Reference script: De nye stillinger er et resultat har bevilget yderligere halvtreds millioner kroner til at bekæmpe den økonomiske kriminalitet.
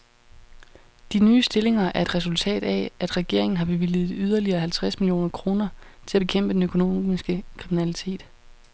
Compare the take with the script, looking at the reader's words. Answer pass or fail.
fail